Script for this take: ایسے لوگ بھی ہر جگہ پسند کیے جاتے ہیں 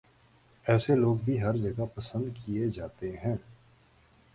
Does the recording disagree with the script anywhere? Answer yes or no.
no